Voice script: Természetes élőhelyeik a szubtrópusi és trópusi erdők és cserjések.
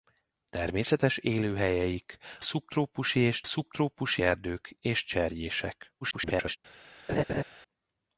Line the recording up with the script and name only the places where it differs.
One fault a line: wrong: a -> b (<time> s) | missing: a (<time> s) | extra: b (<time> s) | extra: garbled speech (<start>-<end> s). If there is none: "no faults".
missing: a (2.2 s)
wrong: trópusi -> szubtrópusi (3.4 s)
extra: garbled speech (6.0-6.6 s)